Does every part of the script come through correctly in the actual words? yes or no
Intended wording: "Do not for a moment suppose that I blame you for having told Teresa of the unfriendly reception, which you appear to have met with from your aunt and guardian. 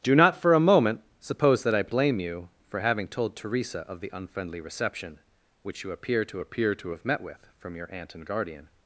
no